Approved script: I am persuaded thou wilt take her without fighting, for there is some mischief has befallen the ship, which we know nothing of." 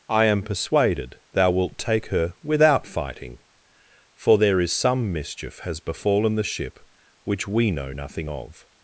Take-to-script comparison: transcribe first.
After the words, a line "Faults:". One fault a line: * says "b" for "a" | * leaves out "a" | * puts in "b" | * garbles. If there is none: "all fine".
I am persuaded thou wilt take her without fighting, for there is some mischief has befallen the ship, which we know nothing of."
Faults:
all fine